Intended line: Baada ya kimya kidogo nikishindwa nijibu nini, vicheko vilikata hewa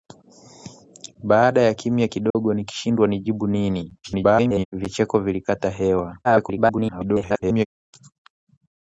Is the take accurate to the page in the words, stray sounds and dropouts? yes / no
no